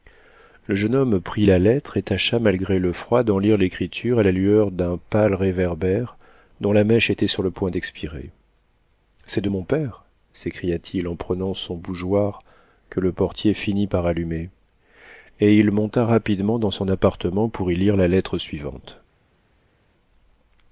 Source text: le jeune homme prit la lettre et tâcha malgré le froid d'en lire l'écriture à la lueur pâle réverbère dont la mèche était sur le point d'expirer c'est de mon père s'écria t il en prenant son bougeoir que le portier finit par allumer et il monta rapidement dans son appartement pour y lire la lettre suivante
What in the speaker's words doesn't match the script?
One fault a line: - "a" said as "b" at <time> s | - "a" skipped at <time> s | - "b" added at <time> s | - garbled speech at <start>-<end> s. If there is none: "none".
- "d'un" added at 4.7 s